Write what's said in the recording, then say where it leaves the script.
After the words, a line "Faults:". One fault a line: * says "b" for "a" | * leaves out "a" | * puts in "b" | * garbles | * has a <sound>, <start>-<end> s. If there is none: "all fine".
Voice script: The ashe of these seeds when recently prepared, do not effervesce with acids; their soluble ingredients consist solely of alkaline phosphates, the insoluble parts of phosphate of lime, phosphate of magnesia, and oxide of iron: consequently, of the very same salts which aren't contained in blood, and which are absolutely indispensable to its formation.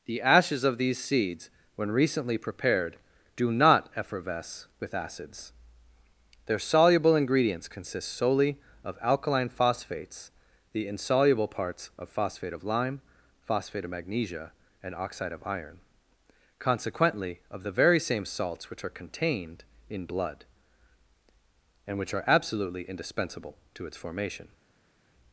The ashes of these seeds when recently prepared, do not effervesce with acids; their soluble ingredients consist solely of alkaline phosphates, the insoluble parts of phosphate of lime, phosphate of magnesia, and oxide of iron: consequently, of the very same salts which are contained in blood, and which are absolutely indispensable to its formation.
Faults:
* says "ashes" for "ashe"
* says "are" for "aren't"